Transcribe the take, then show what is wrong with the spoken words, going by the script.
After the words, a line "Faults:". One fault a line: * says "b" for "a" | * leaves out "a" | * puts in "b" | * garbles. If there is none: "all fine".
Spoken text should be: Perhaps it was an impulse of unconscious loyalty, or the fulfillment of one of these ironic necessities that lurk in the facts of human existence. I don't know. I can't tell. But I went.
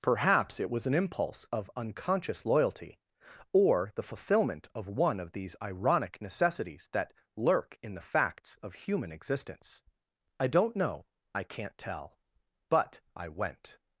Perhaps it was an impulse of unconscious loyalty, or the fulfillment of one of these ironic necessities that lurk in the facts of human existence. I don't know. I can't tell. But I went.
Faults:
all fine